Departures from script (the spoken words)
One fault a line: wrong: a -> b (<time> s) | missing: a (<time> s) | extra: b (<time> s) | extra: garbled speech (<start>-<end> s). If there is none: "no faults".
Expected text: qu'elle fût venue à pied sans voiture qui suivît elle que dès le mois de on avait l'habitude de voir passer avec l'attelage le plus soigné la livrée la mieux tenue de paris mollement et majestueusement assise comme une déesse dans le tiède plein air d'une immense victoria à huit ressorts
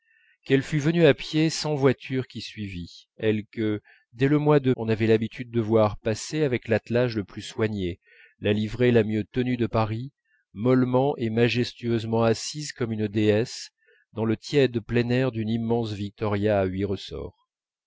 no faults